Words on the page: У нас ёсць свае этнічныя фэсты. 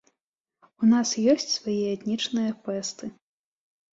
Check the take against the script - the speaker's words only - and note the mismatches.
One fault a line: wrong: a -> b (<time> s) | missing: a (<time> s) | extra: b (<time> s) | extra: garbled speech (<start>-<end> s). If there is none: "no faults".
no faults